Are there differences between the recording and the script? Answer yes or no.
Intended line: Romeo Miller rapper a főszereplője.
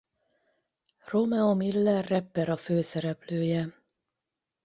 no